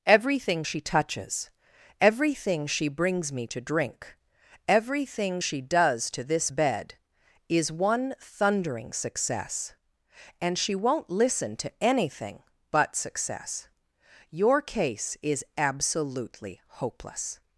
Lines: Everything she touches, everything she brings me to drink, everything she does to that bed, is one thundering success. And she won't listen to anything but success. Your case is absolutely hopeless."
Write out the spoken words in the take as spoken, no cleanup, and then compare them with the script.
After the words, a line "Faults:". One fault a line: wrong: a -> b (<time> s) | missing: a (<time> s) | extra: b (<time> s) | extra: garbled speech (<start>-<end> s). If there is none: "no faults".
Everything she touches, everything she brings me to drink, everything she does to this bed, is one thundering success. And she won't listen to anything but success. Your case is absolutely hopeless."
Faults:
wrong: that -> this (6.2 s)